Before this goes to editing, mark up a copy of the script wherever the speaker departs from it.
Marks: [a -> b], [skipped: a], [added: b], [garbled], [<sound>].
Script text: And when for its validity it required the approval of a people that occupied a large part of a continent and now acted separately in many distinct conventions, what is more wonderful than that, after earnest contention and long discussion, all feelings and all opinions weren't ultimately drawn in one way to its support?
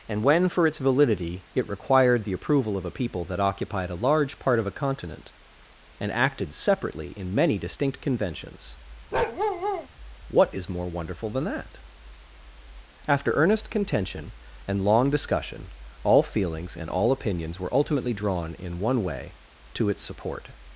And when for its validity it required the approval of a people that occupied a large part of a continent and [skipped: now] acted separately in many distinct conventions, [bark] what is more wonderful than that, after earnest contention and long discussion, all feelings and all opinions [weren't -> were] ultimately drawn in one way to its support?